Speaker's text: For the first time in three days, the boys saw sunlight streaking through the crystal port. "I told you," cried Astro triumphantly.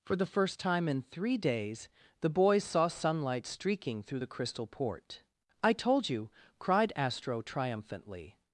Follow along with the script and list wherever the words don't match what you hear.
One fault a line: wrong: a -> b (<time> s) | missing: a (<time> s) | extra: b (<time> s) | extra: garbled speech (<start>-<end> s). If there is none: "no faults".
no faults